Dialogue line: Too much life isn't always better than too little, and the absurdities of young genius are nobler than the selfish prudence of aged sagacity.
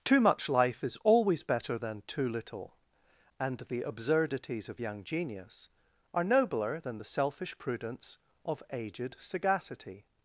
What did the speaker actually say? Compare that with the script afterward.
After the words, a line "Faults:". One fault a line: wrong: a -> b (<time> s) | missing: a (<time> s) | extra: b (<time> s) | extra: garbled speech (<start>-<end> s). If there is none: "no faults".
Too much life is always better than too little, and the absurdities of young genius are nobler than the selfish prudence of aged sagacity.
Faults:
wrong: isn't -> is (0.8 s)